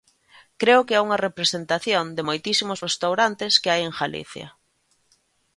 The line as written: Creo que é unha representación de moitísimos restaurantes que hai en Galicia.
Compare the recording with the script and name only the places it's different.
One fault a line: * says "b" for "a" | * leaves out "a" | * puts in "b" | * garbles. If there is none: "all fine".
all fine